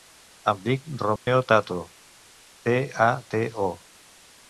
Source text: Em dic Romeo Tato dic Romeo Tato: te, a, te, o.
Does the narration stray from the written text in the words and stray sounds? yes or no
yes